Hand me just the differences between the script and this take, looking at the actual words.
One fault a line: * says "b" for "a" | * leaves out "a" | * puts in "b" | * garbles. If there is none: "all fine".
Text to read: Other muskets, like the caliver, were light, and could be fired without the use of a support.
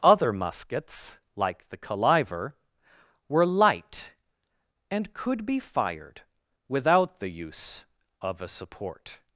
all fine